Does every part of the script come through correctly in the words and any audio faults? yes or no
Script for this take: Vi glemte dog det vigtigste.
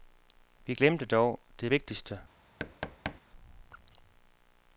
no